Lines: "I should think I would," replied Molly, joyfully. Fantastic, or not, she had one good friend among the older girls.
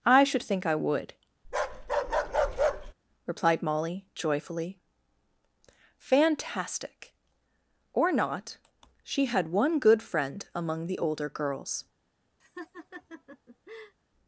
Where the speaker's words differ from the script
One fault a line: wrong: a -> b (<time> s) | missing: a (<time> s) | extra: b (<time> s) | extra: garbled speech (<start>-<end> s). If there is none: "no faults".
no faults